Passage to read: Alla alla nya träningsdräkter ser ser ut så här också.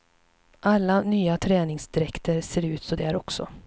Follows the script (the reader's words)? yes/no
no